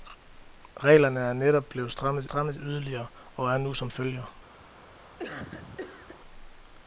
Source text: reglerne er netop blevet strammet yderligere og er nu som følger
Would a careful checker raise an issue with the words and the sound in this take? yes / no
yes